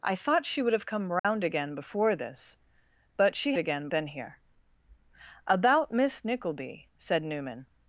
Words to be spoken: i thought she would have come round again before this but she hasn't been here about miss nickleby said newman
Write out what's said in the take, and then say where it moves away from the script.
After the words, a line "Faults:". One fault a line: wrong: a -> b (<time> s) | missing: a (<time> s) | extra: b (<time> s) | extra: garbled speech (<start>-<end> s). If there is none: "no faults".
i thought she would have come round again before this but she again been here about miss nickleby said newman
Faults:
wrong: hasn't -> again (3.6 s)